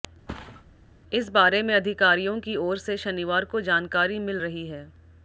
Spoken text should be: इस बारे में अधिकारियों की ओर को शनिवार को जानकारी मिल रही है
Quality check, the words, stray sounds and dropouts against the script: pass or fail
fail